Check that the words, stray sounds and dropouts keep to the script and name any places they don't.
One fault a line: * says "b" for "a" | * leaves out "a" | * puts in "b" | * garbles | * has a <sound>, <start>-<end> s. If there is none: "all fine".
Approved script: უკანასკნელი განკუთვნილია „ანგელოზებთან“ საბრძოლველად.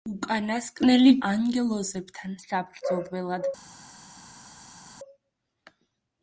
* leaves out "განკუთვნილია"